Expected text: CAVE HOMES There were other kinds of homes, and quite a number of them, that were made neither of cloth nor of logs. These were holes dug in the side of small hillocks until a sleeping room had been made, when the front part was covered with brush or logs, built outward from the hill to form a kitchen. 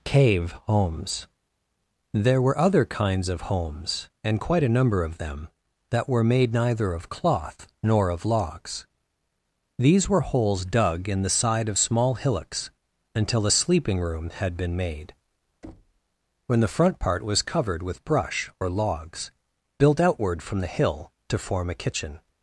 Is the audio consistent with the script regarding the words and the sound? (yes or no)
no